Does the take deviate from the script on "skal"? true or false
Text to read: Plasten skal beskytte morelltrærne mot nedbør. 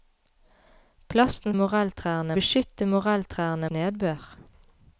true